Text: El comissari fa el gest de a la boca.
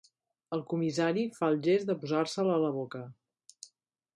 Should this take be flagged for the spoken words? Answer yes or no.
yes